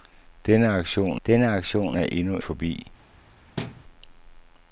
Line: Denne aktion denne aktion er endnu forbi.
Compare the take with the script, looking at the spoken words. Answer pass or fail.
pass